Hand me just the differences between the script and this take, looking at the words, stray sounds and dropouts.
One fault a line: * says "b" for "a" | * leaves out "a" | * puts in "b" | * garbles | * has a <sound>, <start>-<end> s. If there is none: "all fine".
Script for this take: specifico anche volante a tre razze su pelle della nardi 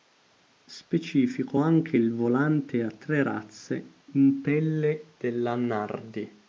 * puts in "il"
* says "in" for "su"